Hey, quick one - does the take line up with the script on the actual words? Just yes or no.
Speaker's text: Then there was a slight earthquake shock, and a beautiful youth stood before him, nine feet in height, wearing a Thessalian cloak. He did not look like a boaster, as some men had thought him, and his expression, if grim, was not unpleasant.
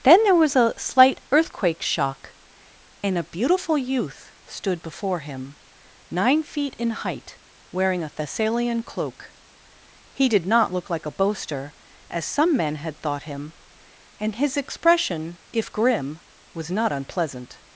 yes